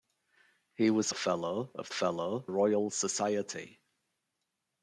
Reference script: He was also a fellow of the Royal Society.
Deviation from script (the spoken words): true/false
true